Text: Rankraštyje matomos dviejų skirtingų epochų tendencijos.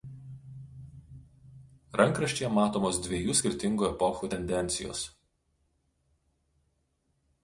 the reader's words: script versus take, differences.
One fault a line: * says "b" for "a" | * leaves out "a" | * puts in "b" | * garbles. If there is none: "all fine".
all fine